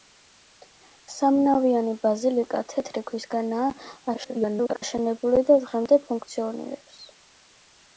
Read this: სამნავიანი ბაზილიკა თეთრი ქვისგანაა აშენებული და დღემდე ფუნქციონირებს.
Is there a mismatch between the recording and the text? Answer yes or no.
yes